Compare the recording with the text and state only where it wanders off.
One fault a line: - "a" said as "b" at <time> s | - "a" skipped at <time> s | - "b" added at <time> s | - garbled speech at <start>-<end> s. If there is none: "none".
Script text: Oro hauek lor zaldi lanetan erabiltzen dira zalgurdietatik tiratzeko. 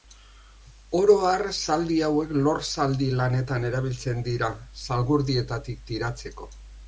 - "har zaldi" added at 1.3 s